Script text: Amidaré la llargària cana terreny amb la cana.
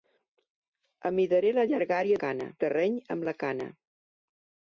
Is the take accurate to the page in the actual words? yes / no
yes